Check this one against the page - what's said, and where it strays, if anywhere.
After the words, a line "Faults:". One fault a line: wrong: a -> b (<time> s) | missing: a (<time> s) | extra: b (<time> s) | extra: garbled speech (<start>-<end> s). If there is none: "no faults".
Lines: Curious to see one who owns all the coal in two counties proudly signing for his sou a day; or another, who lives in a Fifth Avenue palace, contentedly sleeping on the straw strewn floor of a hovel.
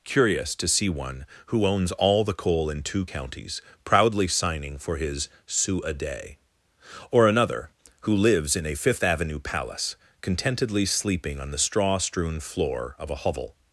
Curious to see one who owns all the coal in two counties proudly signing for his sou a day; or another, who lives in a Fifth Avenue palace, contentedly sleeping on the straw strewn floor of a hovel.
Faults:
no faults